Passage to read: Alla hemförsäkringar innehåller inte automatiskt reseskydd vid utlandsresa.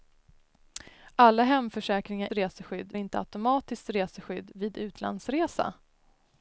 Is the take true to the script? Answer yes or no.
no